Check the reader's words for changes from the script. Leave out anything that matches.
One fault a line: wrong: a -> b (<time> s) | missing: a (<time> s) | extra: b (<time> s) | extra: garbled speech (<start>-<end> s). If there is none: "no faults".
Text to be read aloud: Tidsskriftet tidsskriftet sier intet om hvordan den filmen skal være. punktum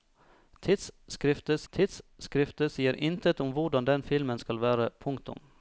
no faults